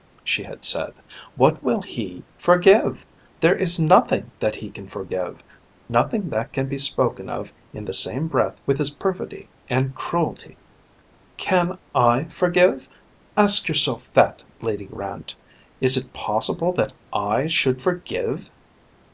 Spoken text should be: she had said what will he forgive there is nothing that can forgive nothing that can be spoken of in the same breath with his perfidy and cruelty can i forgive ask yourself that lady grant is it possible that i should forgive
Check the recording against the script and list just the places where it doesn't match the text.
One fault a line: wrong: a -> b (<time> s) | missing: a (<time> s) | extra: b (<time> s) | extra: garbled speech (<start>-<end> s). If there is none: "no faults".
extra: he (4.6 s)